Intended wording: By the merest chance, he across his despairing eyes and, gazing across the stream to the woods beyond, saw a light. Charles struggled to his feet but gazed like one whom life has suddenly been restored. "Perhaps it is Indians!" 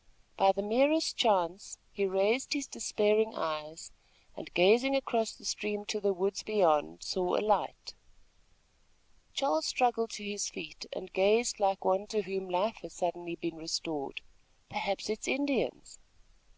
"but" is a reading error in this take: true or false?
true